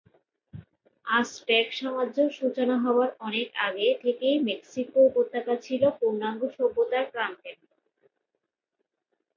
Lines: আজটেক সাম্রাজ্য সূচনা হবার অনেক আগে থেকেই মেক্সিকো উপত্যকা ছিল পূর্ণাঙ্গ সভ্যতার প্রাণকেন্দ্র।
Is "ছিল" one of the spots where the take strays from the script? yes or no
no